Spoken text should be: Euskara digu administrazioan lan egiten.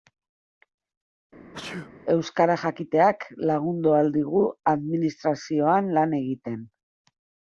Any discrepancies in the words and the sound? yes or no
yes